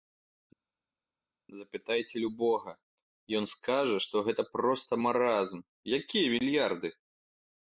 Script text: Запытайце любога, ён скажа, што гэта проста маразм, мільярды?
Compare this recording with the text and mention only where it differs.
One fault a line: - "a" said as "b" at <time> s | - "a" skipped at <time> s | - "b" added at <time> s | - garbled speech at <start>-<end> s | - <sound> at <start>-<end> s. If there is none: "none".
- "якія" added at 6.0 s